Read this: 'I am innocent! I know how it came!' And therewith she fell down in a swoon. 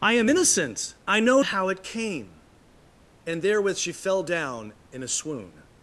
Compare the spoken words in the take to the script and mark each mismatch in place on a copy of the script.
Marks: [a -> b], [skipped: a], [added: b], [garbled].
'I am innocent! I know how it came!' And therewith she fell down in a swoon.